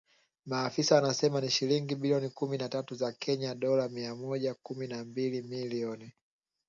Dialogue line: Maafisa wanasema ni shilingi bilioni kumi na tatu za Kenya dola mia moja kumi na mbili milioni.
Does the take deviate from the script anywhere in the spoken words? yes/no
no